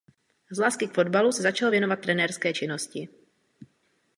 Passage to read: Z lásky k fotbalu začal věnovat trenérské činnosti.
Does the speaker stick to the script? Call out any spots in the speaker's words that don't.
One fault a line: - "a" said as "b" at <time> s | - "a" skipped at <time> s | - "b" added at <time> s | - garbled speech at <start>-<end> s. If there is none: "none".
- "se" added at 1.3 s